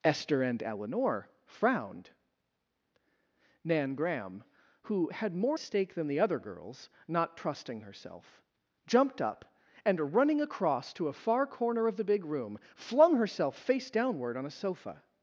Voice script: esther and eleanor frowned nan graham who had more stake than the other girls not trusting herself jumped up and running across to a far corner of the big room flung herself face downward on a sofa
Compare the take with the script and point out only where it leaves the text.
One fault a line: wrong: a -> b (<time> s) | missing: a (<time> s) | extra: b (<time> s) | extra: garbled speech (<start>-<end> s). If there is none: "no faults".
no faults